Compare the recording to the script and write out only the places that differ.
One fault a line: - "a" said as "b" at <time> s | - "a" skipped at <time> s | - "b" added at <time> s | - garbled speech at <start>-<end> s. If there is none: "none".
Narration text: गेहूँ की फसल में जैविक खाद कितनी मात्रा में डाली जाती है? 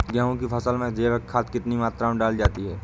none